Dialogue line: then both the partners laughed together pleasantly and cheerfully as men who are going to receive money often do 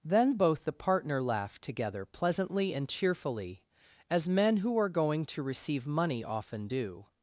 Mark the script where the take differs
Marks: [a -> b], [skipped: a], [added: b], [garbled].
then both the [partners -> partner] laughed together pleasantly and cheerfully as men who are going to receive money often do